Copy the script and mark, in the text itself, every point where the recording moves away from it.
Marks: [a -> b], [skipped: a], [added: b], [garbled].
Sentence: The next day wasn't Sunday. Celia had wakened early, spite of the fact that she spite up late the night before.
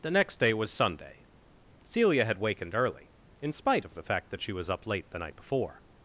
The next day [wasn't -> was] Sunday. Celia had wakened early, [added: in] spite of the fact that she [spite -> was] up late the night before.